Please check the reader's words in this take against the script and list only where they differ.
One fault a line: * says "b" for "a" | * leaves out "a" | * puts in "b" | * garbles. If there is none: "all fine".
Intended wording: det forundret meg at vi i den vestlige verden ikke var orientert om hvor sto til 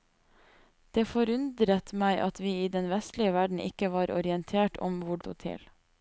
all fine